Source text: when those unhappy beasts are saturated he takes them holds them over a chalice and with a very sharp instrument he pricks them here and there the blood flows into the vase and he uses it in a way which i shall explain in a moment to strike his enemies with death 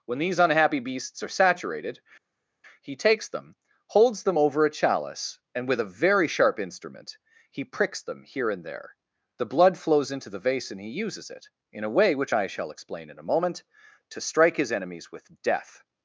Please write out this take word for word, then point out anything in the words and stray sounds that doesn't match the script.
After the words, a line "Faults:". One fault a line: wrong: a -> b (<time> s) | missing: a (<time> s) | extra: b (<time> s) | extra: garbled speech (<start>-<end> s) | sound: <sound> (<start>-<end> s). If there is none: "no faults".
when these unhappy beasts are saturated he takes them holds them over a chalice and with a very sharp instrument he pricks them here and there the blood flows into the vase and he uses it in a way which i shall explain in a moment to strike his enemies with death
Faults:
wrong: those -> these (0.2 s)